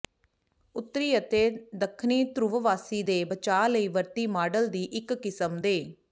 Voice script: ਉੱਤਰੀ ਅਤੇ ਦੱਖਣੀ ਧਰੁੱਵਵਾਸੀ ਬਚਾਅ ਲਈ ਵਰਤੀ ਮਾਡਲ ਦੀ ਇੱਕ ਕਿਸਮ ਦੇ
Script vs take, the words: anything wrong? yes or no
yes